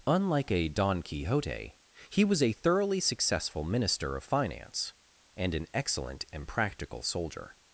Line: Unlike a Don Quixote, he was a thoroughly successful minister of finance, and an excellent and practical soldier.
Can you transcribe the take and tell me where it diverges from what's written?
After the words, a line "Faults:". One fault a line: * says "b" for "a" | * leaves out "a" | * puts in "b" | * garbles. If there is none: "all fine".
Unlike a Don Quixote, he was a thoroughly successful minister of finance, and an excellent and practical soldier.
Faults:
all fine